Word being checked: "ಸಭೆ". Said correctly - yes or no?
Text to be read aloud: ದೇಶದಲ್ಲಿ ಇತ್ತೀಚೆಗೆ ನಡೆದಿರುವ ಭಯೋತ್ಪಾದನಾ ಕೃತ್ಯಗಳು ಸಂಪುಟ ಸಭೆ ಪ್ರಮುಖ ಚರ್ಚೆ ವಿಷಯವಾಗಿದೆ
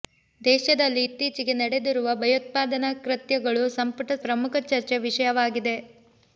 no